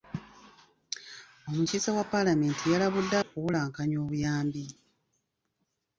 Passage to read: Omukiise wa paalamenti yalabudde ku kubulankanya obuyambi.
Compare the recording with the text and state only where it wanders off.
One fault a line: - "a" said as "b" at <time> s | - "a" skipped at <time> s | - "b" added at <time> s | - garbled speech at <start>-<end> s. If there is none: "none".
none